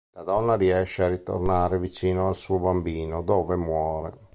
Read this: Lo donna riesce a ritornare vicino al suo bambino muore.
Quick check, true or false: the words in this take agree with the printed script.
false